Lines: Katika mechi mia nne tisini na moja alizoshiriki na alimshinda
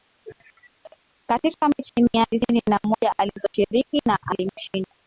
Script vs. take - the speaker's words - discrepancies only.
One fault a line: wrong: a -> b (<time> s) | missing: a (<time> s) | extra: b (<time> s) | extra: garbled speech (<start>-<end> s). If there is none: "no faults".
missing: nne (2.2 s)